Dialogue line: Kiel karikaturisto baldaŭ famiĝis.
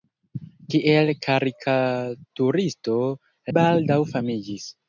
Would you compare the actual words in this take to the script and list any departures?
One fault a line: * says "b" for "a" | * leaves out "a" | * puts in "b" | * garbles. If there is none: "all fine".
all fine